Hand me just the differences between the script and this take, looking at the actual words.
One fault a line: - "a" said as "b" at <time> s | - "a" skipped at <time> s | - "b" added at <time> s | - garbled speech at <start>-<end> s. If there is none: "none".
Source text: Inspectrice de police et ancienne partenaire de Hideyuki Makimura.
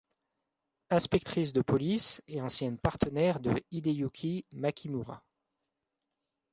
none